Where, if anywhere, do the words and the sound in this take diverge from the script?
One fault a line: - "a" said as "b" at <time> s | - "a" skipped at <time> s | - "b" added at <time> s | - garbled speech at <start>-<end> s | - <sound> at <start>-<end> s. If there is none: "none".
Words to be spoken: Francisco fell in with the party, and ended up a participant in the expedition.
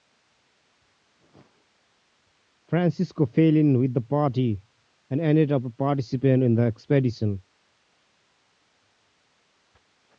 none